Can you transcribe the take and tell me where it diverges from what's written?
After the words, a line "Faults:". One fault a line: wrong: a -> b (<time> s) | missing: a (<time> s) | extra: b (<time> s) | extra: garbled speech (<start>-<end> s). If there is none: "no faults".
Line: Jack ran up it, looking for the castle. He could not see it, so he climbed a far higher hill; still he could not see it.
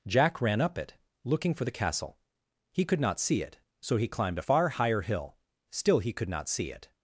Jack ran up it, looking for the castle. He could not see it, so he climbed a far higher hill; still he could not see it.
Faults:
no faults